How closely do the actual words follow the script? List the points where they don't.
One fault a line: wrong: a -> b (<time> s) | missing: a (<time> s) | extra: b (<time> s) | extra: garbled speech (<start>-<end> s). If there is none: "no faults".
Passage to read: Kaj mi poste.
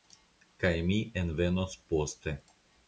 extra: envenos (1.2 s)